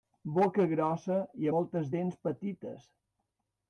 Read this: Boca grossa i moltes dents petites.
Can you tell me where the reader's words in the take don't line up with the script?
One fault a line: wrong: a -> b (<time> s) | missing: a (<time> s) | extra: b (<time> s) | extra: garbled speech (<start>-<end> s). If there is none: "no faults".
no faults